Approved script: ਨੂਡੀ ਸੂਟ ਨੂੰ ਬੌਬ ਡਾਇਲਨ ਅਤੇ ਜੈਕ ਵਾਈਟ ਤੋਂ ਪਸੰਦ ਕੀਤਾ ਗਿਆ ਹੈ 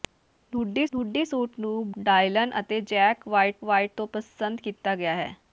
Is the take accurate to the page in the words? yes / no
no